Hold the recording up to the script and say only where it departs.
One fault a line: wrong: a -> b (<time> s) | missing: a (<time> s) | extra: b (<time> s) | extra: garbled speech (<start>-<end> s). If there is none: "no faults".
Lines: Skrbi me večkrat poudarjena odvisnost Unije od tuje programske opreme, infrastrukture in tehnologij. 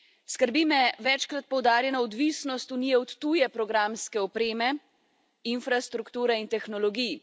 no faults